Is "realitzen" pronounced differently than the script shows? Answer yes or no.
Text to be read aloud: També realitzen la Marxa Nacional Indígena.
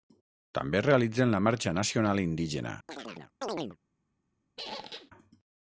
no